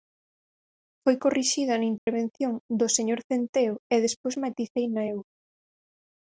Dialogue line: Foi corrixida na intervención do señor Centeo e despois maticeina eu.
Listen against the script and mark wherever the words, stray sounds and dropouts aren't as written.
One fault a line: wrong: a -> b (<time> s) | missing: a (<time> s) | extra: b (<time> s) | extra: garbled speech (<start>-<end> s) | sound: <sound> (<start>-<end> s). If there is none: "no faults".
sound: dropout (2.0-2.1 s)